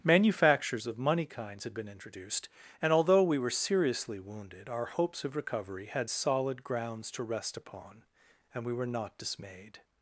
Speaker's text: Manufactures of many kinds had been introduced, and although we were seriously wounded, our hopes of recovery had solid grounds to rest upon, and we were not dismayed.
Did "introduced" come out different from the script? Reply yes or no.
no